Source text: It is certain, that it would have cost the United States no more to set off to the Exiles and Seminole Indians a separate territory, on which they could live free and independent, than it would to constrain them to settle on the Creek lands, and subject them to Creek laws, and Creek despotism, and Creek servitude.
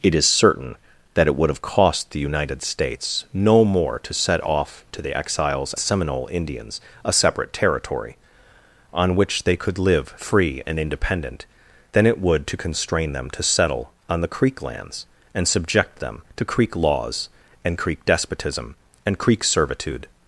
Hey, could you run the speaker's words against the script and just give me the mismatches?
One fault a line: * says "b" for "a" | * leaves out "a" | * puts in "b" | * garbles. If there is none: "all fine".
* leaves out "and"